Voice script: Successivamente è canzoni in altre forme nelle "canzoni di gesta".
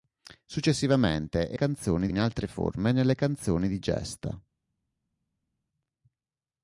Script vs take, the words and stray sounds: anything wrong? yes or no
no